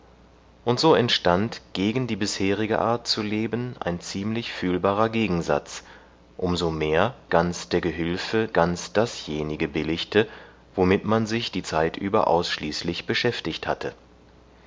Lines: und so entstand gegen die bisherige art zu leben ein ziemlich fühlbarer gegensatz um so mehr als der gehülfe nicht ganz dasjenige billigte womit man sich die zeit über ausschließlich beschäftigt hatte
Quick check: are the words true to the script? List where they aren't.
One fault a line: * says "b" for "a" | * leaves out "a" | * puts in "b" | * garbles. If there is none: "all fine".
* says "ganz" for "als"
* leaves out "nicht"